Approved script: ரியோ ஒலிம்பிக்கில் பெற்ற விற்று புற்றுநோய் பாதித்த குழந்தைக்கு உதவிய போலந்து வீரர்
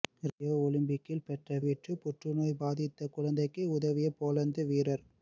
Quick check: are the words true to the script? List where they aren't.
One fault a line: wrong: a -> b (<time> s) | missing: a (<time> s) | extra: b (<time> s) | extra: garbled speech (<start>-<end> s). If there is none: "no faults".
no faults